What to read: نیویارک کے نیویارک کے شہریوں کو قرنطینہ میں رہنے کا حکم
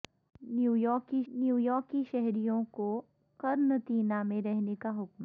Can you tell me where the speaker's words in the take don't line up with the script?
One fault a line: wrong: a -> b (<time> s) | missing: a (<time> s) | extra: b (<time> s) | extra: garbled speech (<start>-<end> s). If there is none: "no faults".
no faults